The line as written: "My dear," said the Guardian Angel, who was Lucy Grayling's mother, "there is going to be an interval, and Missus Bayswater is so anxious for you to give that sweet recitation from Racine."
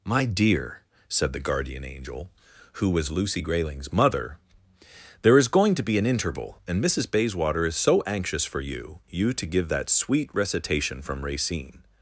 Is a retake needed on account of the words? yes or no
yes